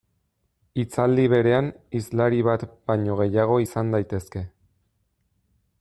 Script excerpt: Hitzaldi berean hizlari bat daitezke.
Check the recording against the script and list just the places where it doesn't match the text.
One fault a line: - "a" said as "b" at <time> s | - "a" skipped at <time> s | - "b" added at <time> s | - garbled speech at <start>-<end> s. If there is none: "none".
- "baino gehiago izan" added at 2.9 s